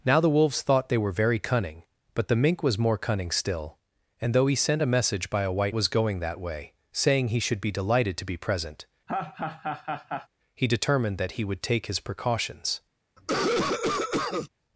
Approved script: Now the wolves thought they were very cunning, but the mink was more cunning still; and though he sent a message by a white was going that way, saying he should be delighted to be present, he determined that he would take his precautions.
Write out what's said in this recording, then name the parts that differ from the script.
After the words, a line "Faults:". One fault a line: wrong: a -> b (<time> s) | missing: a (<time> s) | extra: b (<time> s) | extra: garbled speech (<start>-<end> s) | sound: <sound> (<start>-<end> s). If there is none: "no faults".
Now the wolves thought they were very cunning, but the mink was more cunning still; and though he sent a message by a white was going that way, saying he should be delighted to be present, he determined that he would take his precautions.
Faults:
sound: laugh (9.1-10.3 s)
sound: cough (13.2-14.5 s)